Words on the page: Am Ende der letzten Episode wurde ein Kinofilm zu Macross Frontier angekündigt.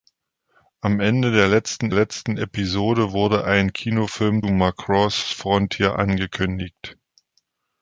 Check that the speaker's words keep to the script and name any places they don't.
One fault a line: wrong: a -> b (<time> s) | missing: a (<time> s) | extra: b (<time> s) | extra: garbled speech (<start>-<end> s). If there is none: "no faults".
extra: letzten (1.9 s)
missing: zu (4.4 s)